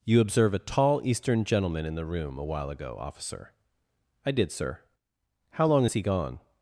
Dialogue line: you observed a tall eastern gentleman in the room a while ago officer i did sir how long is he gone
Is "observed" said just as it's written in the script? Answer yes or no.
no